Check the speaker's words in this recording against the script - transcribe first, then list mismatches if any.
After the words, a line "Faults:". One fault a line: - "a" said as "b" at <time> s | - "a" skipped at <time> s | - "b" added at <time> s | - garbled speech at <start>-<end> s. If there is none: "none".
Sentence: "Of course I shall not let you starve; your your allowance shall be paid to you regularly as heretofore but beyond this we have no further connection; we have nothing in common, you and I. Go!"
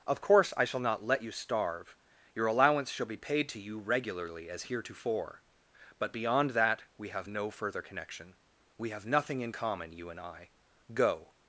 "Of course I shall not let you starve; your allowance shall be paid to you regularly as heretofore but beyond that we have no further connection; we have nothing in common, you and I. Go!"
Faults:
- "your" skipped at 2.5 s
- "this" said as "that" at 6.5 s